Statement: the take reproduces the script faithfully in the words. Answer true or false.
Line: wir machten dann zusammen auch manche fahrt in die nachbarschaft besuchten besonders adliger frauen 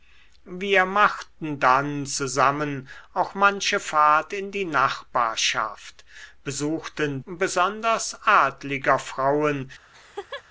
true